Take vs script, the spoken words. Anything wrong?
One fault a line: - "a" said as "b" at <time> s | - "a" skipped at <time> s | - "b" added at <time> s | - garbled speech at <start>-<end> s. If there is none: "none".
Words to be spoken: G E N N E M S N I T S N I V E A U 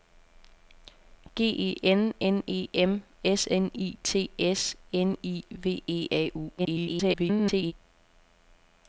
- garbled speech at 6.6-7.7 s